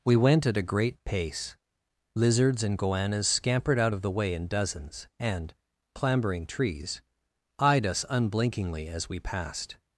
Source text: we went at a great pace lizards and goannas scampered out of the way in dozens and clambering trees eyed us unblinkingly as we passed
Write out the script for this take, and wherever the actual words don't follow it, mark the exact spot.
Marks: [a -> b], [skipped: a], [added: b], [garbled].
we went at a great pace lizards and goannas scampered out of the way in dozens and clambering trees eyed us unblinkingly as we passed